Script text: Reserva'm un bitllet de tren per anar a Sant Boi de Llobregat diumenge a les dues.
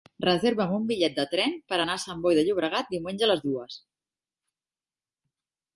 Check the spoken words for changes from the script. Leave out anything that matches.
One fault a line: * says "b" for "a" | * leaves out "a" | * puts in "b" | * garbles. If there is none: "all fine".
all fine